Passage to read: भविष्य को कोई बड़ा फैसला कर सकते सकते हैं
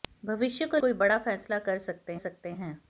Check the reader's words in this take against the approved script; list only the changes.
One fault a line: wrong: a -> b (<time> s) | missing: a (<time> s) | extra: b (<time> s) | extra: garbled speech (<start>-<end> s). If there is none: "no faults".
no faults